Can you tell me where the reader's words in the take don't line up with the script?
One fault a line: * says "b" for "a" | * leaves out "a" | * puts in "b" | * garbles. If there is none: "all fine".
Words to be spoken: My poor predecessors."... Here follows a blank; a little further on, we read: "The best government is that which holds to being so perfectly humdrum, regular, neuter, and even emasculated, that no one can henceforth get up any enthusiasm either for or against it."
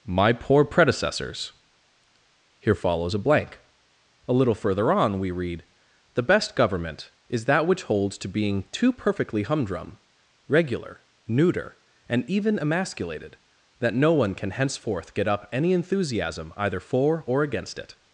* says "too" for "so"